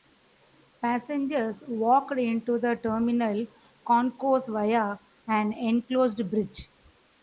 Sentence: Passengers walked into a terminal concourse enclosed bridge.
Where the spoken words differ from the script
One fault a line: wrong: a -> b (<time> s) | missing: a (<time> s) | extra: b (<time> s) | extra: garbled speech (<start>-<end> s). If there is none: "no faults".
wrong: a -> the (2.6 s)
extra: via an (4.5 s)